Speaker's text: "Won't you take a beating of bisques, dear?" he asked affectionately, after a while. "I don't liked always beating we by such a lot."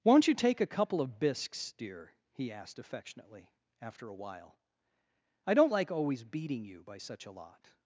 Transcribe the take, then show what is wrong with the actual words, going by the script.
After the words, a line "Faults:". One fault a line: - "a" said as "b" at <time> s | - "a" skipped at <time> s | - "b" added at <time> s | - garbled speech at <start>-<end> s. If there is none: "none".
"Won't you take a couple of bisques, dear?" he asked affectionately, after a while. "I don't like always beating you by such a lot."
Faults:
- "beating" said as "couple" at 0.7 s
- "liked" said as "like" at 5.7 s
- "we" said as "you" at 6.6 s